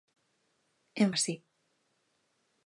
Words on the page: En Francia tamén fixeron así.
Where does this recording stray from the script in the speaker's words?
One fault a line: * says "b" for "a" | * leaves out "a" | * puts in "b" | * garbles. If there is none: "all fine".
* leaves out "Francia tamén fixeron"